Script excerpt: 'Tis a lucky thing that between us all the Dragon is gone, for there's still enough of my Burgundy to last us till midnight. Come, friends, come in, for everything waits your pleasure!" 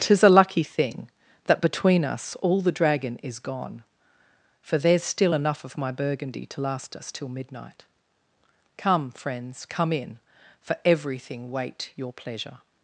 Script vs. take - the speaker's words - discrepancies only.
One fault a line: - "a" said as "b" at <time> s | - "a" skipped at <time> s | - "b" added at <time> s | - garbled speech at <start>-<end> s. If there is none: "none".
- "waits" said as "wait" at 11.5 s